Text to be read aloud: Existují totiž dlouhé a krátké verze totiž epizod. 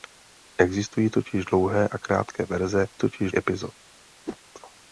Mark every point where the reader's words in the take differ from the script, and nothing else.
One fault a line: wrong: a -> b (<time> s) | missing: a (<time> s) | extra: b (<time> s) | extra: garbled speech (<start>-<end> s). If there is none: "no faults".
no faults